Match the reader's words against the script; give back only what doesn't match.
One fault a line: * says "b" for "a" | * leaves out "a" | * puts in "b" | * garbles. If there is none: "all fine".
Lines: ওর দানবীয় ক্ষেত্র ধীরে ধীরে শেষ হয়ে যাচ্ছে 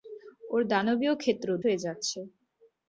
* leaves out "ধীরে ধীরে শেষ"